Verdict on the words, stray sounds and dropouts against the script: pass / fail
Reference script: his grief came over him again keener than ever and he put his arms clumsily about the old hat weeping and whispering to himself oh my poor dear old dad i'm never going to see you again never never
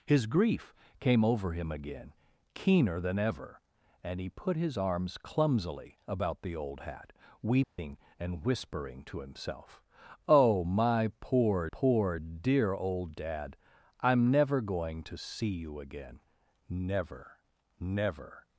fail